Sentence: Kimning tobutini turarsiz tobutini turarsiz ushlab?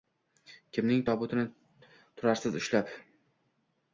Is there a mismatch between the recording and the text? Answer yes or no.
yes